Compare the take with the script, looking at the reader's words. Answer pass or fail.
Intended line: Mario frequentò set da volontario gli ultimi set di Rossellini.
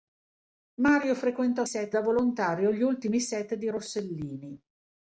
pass